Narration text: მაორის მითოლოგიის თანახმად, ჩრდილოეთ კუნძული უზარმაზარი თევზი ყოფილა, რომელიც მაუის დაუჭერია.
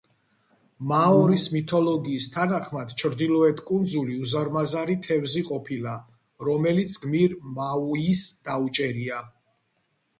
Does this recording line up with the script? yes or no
no